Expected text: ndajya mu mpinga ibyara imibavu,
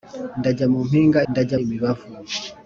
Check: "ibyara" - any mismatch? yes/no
yes